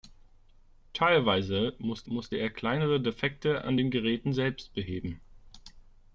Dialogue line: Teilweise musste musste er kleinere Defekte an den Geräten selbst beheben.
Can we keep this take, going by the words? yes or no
yes